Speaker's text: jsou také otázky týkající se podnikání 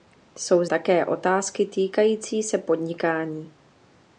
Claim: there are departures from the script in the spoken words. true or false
false